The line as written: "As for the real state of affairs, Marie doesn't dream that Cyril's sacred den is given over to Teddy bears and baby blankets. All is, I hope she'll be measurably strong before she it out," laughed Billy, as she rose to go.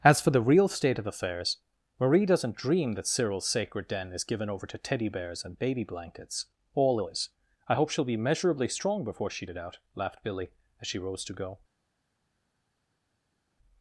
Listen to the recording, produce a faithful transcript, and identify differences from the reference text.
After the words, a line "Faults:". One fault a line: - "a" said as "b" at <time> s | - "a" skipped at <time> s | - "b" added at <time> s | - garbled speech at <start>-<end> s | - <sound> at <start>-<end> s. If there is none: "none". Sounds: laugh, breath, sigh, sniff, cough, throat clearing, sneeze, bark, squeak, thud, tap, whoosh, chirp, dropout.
"As for the real state of affairs, Marie doesn't dream that Cyril's sacred den is given over to Teddy bears and baby blankets. All is, I hope she'll be measurably strong before she it out," laughed Billy, as she rose to go.
Faults:
none